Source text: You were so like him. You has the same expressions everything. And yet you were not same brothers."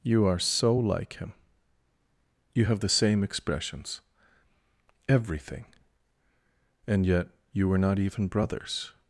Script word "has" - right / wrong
wrong